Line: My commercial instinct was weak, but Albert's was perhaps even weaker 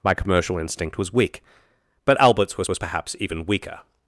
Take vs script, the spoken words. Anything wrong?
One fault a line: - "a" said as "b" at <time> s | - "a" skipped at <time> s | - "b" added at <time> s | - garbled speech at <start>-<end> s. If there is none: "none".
- "was" added at 2.7 s